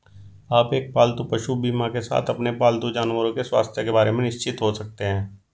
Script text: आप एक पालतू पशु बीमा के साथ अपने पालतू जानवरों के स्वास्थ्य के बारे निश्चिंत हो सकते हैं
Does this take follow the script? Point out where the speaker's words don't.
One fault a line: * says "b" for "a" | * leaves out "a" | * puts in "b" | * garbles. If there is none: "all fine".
* puts in "में"